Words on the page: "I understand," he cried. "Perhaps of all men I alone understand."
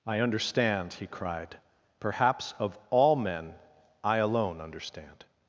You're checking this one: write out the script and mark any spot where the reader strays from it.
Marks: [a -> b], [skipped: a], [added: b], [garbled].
"I understand," he cried. "Perhaps of all men I alone understand."